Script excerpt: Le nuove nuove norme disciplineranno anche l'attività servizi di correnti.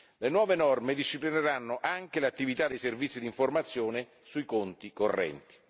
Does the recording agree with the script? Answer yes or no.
no